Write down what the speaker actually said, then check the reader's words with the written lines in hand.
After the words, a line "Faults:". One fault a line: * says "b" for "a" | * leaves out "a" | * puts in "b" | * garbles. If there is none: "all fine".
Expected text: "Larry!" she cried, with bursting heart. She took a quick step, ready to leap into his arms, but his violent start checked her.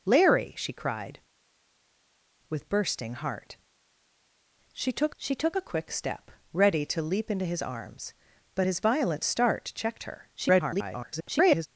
"Larry!" she cried, with bursting heart. She took she took a quick step, ready to leap into his arms, but his violent start checked her. [garbled]
Faults:
* puts in "she took"
* garbles